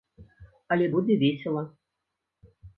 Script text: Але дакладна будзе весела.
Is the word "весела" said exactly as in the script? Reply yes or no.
yes